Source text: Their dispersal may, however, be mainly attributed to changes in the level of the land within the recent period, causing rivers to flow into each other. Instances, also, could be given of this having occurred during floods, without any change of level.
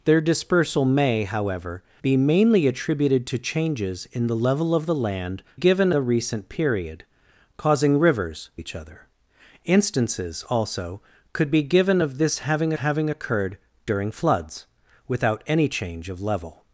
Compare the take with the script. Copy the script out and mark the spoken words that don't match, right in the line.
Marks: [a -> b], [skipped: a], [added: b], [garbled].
Their dispersal may, however, be mainly attributed to changes in the level of the land [within -> given] the recent period, causing rivers [skipped: to flow into] each other. Instances, also, could be given of this having [added: having] occurred during floods, without any change of level.